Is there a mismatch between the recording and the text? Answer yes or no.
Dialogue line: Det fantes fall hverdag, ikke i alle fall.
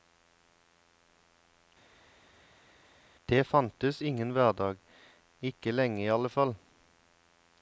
yes